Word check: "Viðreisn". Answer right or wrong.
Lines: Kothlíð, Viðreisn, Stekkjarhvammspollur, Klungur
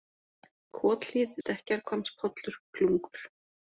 wrong